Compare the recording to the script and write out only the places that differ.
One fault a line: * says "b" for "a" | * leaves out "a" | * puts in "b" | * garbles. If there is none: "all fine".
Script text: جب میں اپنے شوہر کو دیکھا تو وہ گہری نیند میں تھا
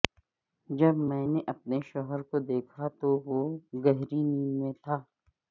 * puts in "نے"